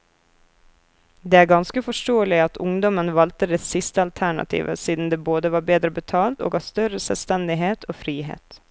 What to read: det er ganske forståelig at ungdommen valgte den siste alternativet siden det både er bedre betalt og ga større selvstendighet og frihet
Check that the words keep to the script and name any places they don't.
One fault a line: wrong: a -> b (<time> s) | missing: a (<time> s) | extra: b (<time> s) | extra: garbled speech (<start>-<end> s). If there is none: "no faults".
wrong: den -> det (3.5 s)
wrong: er -> var (5.5 s)